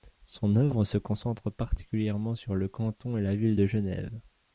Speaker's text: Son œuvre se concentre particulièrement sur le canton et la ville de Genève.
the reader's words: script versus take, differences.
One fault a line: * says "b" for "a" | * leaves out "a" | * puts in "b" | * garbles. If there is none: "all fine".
all fine